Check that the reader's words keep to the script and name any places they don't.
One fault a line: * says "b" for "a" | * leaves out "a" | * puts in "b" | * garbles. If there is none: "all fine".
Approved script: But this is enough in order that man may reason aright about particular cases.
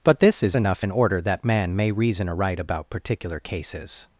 all fine